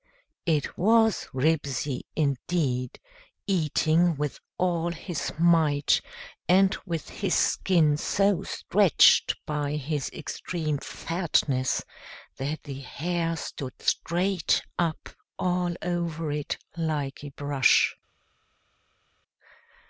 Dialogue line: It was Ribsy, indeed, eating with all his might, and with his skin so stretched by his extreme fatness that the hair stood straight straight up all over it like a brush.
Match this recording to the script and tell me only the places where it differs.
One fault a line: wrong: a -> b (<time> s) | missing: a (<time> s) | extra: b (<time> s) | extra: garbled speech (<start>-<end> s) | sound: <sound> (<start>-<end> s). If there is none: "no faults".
missing: straight (14.6 s)